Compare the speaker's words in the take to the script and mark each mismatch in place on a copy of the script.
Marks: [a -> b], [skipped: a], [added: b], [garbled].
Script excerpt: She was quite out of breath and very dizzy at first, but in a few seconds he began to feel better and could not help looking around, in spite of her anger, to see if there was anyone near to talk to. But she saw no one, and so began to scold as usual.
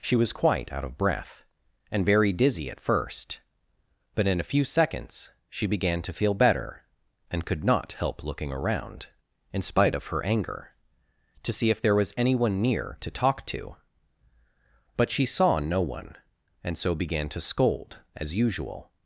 She was quite out of breath and very dizzy at first, but in a few seconds [he -> she] began to feel better and could not help looking around, in spite of her anger, to see if there was anyone near to talk to. But she saw no one, and so began to scold as usual.